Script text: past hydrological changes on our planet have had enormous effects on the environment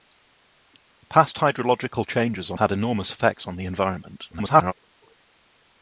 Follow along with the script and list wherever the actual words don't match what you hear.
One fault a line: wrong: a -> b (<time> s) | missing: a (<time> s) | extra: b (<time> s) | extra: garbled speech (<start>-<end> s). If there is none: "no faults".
missing: our planet have (2.6 s)
extra: garbled speech (4.3-4.7 s)